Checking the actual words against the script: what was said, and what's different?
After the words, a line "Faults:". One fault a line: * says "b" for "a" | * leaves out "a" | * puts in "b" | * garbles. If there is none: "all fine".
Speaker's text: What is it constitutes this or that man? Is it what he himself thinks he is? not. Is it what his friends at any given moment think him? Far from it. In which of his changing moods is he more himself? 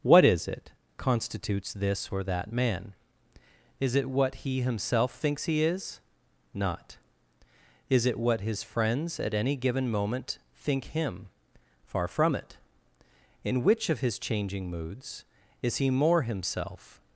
What is it constitutes this or that man? Is it what he himself thinks he is? not. Is it what his friends at any given moment think him? Far from it. In which of his changing moods is he more himself?
Faults:
all fine